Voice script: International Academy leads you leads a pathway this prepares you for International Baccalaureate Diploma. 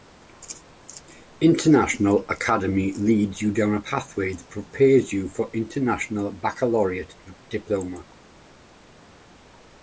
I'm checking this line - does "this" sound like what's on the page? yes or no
no